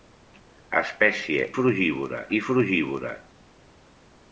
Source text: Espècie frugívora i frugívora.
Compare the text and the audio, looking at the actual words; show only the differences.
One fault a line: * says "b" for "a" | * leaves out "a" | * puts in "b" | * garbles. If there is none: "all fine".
all fine